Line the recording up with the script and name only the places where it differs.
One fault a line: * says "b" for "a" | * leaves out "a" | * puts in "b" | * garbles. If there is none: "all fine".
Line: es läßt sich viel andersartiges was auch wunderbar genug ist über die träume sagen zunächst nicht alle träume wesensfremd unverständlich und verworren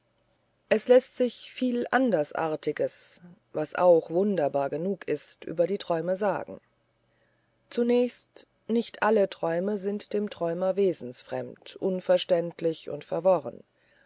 * puts in "sind dem träumer"